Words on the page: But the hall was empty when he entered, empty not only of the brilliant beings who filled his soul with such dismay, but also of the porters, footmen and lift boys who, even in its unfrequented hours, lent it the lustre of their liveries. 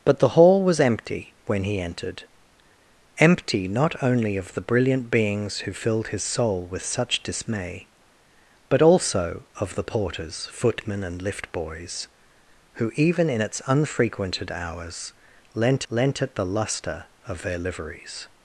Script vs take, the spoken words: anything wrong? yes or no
yes